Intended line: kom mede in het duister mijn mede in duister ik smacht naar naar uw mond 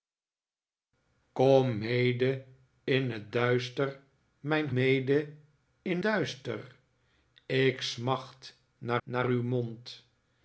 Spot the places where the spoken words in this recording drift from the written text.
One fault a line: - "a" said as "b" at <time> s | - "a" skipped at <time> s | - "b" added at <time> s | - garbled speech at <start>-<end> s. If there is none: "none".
none